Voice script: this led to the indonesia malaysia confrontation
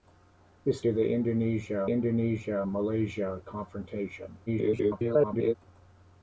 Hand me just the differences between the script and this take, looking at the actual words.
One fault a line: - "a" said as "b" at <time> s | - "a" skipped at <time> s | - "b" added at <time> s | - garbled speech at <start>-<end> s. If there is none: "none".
- "led" skipped at 0.8 s
- "indonesia" added at 1.9 s
- garbled speech at 4.5-5.6 s